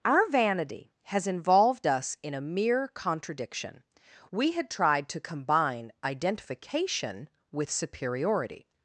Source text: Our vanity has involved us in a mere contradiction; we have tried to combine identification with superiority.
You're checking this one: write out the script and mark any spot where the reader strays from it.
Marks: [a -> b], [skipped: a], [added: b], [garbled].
Our vanity has involved us in a mere contradiction; we [have -> had] tried to combine identification with superiority.